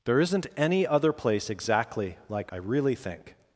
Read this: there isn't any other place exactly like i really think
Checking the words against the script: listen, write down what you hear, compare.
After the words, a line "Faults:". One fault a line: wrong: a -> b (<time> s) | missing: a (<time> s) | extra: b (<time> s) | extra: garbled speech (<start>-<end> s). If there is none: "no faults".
there isn't any other place exactly like i really think
Faults:
no faults